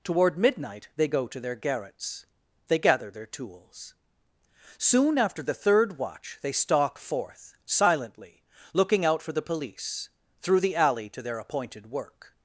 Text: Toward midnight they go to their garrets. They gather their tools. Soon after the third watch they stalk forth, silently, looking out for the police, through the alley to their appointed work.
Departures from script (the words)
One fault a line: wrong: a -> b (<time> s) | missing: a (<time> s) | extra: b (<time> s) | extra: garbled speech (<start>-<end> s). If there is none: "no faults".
no faults